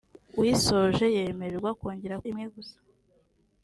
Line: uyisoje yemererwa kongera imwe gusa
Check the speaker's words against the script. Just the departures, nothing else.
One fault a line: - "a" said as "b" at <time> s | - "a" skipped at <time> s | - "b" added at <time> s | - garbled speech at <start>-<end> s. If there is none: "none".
none